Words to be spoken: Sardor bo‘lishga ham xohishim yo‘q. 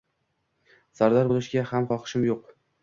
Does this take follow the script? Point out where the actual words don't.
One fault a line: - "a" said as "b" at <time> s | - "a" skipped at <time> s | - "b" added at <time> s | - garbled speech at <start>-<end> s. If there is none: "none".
none